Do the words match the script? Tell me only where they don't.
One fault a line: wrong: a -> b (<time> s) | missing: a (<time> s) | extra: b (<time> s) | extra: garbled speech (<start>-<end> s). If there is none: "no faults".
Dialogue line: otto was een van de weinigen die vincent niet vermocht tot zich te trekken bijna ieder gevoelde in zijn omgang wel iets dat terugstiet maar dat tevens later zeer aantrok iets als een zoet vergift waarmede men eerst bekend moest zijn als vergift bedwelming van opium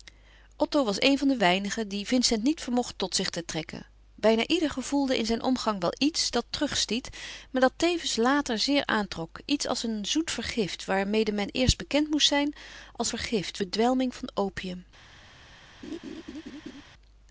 no faults